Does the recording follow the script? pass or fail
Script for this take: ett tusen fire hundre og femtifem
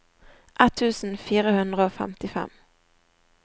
pass